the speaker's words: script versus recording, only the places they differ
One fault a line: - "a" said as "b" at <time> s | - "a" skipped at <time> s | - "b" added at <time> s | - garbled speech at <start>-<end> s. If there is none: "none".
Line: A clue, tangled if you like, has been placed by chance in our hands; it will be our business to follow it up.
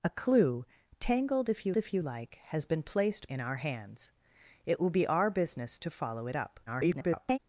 - "if you" added at 1.7 s
- "by chance" skipped at 3.3 s
- garbled speech at 6.7-7.4 s